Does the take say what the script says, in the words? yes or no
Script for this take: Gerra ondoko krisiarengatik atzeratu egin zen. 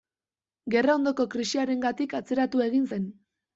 yes